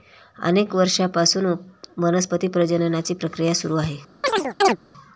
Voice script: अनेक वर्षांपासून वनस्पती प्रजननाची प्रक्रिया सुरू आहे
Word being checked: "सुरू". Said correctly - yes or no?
yes